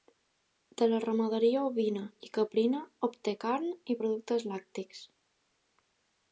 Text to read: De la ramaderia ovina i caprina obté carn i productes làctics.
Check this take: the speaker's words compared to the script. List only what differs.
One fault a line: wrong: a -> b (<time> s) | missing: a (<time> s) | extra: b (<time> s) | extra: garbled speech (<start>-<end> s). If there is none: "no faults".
no faults